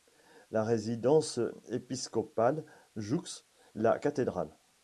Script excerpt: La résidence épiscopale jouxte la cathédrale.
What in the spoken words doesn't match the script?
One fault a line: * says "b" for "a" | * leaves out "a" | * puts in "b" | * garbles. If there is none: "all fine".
all fine